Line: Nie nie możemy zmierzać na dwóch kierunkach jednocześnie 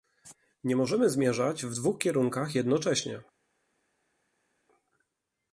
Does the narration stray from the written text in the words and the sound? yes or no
yes